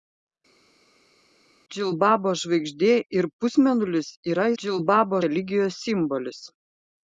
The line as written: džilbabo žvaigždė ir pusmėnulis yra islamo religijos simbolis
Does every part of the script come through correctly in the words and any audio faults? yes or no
no